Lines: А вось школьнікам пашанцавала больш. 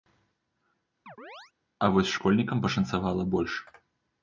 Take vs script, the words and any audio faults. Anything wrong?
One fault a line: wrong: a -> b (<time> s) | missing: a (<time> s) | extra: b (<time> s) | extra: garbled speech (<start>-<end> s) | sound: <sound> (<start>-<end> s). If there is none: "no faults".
sound: chirp (1.1-1.5 s)